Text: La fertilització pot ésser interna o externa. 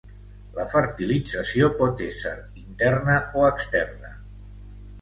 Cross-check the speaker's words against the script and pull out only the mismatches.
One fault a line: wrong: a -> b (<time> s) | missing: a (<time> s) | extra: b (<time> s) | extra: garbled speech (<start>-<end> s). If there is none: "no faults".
no faults